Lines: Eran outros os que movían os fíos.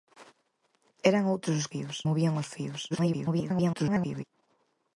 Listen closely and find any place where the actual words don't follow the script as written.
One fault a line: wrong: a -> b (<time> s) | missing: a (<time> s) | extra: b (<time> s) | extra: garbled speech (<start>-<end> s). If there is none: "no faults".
wrong: que -> fíos (1.7 s)
extra: garbled speech (2.9-4.2 s)